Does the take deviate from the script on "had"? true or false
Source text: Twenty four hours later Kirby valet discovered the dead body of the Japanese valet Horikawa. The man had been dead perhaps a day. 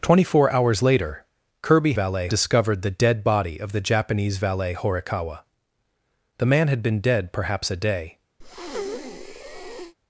false